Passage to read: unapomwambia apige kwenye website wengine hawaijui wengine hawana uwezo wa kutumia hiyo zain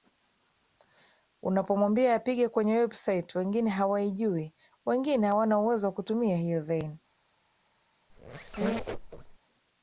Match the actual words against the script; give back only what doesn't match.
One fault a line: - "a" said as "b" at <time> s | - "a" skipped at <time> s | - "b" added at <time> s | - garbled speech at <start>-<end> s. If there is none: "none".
none